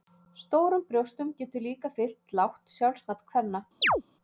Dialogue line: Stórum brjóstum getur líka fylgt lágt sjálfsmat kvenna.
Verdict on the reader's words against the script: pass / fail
pass